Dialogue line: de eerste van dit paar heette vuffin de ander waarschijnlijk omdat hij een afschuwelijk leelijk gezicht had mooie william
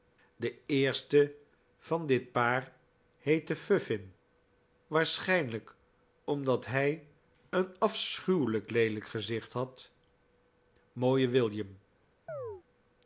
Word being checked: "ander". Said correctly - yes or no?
no